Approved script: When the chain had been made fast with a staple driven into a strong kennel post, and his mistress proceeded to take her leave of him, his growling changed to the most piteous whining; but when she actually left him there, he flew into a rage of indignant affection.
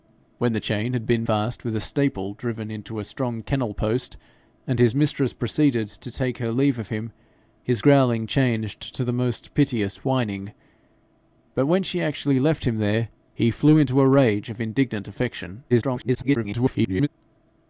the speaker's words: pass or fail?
fail